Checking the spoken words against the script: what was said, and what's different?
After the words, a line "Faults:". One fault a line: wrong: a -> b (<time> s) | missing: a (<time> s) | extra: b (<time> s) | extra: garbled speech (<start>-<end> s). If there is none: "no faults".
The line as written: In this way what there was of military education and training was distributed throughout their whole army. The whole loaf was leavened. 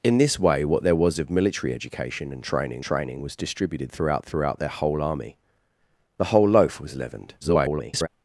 In this way what there was of military education and training training was distributed throughout throughout their whole army. The whole loaf was leavened. [garbled]
Faults:
extra: training (2.8 s)
extra: throughout (4.2 s)
extra: garbled speech (7.4-8.1 s)